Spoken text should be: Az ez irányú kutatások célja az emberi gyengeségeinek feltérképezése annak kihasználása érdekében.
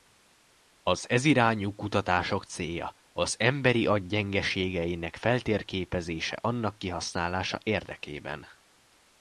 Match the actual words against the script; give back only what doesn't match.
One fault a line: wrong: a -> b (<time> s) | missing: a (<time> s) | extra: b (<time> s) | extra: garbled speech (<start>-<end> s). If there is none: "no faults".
extra: agy (3.9 s)